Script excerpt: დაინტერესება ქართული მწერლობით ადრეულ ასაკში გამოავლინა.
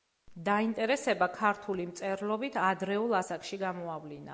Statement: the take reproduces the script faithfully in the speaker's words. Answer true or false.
true